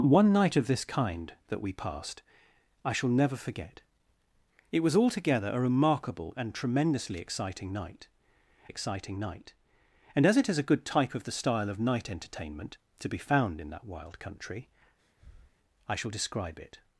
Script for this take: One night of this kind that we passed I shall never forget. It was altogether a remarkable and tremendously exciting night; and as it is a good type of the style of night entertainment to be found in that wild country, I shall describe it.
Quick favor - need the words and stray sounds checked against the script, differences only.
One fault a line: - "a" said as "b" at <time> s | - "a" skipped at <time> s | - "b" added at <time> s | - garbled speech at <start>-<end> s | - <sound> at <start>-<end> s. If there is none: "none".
- "exciting night" added at 8.7 s
- breath at 15.0-15.6 s